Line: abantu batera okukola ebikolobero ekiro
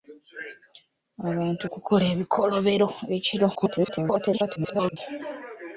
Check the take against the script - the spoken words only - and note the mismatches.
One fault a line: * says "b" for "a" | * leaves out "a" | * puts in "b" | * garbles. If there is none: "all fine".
* leaves out "batera"
* garbles